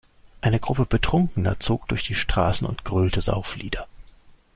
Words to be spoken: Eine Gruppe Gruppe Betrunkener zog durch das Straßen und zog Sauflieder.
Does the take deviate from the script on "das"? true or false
true